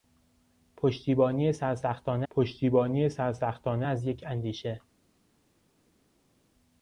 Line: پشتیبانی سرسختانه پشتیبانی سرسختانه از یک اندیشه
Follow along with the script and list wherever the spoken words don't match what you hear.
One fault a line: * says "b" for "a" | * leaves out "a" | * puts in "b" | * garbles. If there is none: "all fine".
all fine